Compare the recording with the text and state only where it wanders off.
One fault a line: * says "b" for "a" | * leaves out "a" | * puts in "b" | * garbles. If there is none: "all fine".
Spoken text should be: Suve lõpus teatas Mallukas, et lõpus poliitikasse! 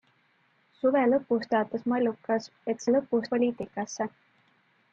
all fine